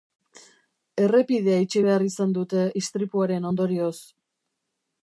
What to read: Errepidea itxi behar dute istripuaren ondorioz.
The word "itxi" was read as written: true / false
true